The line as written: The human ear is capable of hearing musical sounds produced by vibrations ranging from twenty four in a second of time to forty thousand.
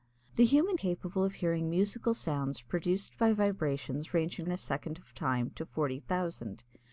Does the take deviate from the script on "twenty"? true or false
true